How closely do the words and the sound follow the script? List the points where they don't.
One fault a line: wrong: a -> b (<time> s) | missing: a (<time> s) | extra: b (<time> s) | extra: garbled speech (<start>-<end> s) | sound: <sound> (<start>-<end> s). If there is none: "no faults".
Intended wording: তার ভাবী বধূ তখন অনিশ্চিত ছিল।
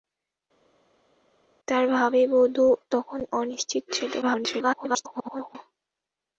extra: garbled speech (4.2-5.6 s)